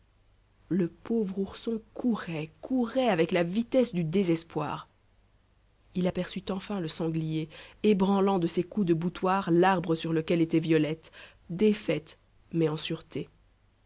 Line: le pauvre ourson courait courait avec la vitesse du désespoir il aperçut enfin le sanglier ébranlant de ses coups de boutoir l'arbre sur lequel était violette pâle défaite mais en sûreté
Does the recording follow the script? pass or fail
fail